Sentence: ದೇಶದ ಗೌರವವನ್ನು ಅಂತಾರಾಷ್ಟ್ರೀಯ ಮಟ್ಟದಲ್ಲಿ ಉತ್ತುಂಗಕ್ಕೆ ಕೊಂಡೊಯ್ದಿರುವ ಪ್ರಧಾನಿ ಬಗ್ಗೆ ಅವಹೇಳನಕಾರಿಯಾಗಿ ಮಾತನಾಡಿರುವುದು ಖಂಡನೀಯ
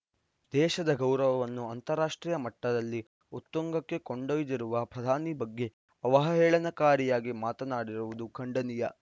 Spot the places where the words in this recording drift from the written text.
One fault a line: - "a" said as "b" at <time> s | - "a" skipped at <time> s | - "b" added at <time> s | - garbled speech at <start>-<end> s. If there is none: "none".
none